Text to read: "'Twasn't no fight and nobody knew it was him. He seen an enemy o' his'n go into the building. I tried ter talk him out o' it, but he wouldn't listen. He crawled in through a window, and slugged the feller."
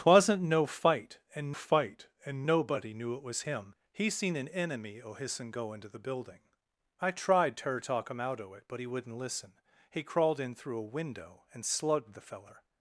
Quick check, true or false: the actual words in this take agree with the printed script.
false